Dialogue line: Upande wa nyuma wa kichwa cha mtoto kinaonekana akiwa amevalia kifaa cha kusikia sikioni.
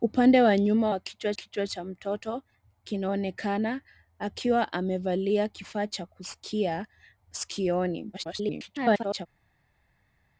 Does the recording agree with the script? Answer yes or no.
no